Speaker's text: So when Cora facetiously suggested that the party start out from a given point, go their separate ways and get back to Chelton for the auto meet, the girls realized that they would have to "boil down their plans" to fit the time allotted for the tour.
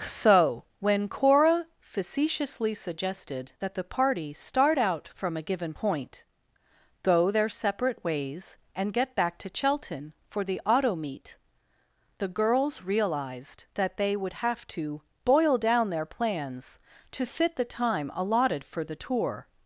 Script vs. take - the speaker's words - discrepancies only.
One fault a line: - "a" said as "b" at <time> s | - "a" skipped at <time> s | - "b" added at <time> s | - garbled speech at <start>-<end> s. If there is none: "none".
none